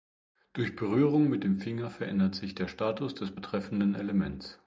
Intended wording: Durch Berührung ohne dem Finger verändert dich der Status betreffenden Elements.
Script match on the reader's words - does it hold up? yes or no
no